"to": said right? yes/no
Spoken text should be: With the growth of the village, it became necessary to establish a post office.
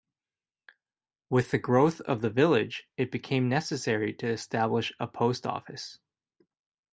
yes